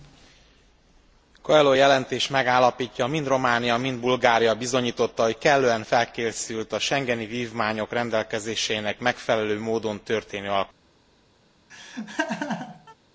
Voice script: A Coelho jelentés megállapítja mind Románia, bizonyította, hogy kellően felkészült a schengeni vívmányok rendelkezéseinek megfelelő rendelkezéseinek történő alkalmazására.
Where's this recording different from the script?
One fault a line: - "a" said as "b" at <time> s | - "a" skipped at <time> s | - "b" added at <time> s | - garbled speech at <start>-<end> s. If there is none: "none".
- "mind Bulgária" added at 3.8 s
- "rendelkezéseinek" said as "módon" at 9.6 s